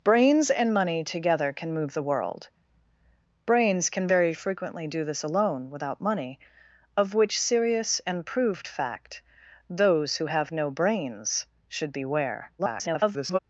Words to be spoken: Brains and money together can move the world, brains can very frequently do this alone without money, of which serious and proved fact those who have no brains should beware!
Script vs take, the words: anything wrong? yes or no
yes